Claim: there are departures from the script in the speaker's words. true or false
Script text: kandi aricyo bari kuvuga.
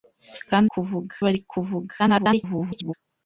true